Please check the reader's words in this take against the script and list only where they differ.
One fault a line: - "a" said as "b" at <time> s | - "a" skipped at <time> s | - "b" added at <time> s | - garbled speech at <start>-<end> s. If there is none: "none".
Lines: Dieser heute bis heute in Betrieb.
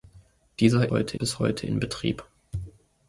none